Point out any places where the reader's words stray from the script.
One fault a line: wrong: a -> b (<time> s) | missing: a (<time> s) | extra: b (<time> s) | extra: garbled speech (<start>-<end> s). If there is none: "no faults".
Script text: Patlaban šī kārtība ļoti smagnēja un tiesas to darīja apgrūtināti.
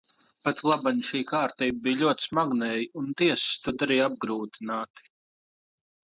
extra: bija (1.9 s)